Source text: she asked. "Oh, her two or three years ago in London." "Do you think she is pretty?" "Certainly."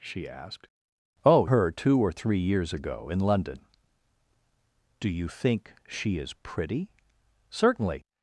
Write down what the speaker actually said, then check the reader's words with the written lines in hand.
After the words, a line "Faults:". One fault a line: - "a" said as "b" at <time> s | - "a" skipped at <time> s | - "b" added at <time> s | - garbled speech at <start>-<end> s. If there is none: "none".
she asked. "Oh, her two or three years ago in London." "Do you think she is pretty?" "Certainly."
Faults:
none